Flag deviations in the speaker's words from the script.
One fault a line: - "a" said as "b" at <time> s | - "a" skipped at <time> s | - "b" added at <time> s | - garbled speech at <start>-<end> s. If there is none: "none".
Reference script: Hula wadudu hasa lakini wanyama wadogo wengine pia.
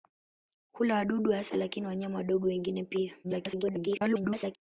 - garbled speech at 3.2-4.6 s